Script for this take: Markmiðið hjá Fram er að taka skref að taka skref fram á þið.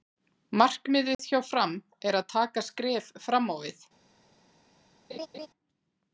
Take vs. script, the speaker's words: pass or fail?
fail